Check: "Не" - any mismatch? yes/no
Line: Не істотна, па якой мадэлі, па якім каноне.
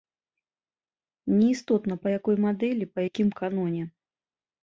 no